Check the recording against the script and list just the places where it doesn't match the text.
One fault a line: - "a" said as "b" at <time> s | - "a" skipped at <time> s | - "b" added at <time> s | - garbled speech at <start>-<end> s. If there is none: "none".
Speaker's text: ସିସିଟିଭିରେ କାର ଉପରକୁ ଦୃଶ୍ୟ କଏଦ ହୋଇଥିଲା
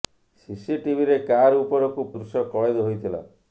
none